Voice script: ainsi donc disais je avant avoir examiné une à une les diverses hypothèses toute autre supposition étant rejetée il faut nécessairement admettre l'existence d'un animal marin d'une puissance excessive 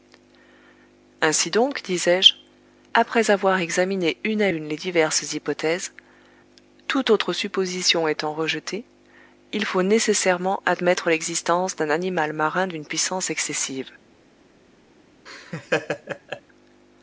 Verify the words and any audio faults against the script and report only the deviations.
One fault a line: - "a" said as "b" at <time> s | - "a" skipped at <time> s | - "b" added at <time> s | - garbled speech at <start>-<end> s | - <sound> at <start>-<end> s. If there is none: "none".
- "avant" said as "après" at 3.0 s
- laugh at 15.3-16.4 s